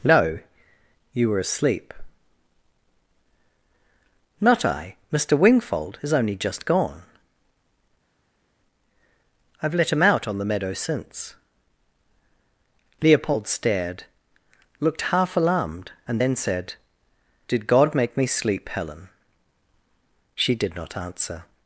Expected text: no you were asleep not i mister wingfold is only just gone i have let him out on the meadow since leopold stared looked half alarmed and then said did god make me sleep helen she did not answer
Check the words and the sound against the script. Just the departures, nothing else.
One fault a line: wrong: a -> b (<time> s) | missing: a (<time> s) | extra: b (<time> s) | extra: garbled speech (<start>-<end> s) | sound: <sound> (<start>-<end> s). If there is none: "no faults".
no faults